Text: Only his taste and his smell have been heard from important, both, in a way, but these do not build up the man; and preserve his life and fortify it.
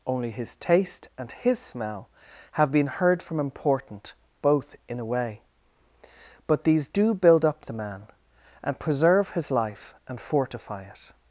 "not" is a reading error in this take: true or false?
true